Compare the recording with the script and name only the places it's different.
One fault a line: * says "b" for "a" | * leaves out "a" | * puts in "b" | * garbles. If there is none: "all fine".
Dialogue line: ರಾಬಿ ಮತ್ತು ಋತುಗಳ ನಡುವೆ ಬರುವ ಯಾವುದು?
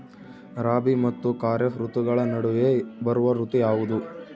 * puts in "ಖಾರೇಫ್"
* puts in "ಋತು"